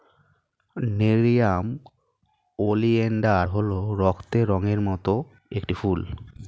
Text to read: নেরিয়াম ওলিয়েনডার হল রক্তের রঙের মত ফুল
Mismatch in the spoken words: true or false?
true